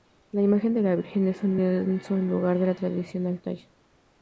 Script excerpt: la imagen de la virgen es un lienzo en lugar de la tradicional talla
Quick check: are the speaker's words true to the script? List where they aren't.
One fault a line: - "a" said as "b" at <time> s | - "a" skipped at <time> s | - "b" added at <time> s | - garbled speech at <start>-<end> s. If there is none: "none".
none